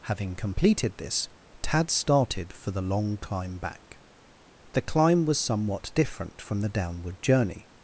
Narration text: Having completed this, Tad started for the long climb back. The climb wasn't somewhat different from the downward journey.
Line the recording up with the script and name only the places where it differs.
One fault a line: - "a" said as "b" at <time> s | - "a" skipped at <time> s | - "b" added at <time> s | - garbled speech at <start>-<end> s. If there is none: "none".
- "wasn't" said as "was" at 5.2 s